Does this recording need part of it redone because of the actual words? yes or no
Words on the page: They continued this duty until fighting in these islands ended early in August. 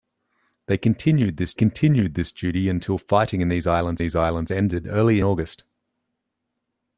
yes